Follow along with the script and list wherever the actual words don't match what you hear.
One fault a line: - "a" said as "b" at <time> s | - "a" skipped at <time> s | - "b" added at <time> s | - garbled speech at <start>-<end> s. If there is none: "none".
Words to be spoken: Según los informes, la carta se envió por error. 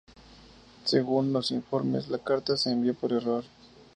none